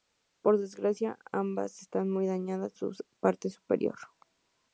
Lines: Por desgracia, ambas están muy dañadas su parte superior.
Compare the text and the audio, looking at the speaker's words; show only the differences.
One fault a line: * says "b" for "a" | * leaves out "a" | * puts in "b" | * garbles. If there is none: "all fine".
all fine